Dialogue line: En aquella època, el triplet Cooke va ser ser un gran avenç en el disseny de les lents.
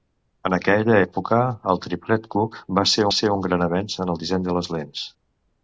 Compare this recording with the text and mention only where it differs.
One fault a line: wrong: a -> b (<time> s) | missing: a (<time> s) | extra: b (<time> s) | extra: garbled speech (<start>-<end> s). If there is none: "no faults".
no faults